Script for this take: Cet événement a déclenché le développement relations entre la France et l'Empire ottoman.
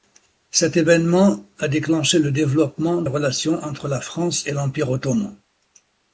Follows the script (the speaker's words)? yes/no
yes